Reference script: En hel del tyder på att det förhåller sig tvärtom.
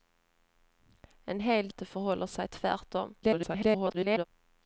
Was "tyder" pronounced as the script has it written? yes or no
no